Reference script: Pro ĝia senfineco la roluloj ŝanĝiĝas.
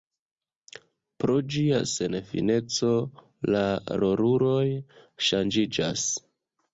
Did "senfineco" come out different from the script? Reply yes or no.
no